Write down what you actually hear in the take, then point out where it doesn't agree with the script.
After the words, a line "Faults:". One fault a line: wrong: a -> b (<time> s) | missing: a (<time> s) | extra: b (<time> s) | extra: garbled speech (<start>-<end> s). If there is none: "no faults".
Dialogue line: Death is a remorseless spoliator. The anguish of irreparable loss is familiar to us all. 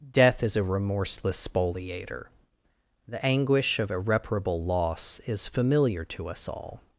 Death is a remorseless spoliator. The anguish of irreparable loss is familiar to us all.
Faults:
no faults